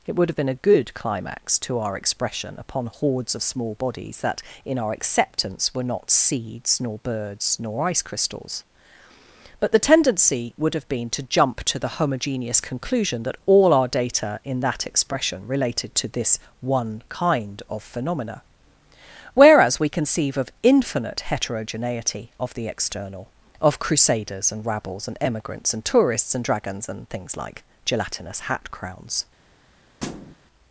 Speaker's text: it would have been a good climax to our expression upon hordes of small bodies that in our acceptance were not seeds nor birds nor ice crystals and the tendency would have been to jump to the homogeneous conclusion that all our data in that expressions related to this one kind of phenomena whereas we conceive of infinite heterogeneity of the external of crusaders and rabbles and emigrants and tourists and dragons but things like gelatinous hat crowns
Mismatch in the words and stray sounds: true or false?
true